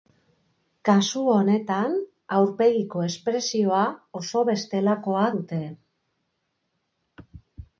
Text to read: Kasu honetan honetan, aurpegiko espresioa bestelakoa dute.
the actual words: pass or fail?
fail